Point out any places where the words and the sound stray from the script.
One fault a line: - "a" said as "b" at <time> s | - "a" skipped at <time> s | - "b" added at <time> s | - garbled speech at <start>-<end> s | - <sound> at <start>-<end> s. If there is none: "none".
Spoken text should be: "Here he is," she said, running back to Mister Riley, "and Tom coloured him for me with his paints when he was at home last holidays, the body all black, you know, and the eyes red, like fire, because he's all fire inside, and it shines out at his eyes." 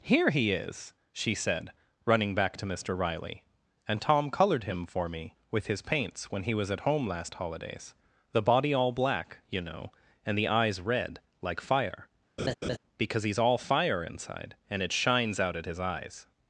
- laugh at 12.4-12.8 s